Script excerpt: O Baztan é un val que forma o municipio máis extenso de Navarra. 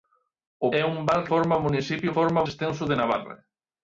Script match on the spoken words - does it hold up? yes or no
no